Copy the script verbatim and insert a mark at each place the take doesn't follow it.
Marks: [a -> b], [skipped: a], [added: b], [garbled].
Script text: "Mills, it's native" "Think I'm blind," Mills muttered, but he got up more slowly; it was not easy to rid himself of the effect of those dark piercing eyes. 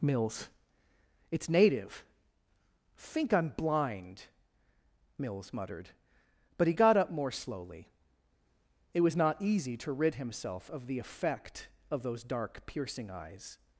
"Mills, it's native" "Think I'm blind," Mills muttered, but he got up more slowly; it was not easy to rid himself of the effect of those dark piercing eyes.